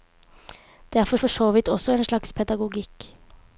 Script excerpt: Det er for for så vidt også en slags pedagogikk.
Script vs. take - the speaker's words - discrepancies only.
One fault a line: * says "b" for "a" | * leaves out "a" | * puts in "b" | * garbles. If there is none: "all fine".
all fine